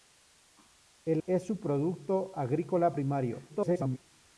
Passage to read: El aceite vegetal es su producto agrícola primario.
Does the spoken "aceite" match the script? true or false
false